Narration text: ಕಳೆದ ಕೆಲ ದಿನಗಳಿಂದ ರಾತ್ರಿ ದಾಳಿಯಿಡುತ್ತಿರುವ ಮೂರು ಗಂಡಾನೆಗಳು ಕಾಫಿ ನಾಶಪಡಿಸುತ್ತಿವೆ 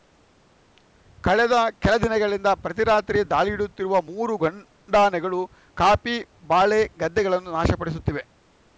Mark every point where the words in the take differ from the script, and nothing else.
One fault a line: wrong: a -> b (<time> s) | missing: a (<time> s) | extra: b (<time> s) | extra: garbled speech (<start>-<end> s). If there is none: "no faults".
extra: ಪ್ರತಿ (2.6 s)
extra: ಬಾಳೆ ಗದ್ದೆಗಳನ್ನು (6.5 s)